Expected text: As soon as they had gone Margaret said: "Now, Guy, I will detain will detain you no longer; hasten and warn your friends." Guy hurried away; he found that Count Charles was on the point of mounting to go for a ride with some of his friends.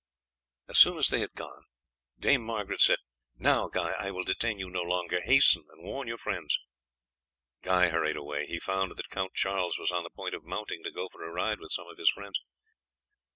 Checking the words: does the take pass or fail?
fail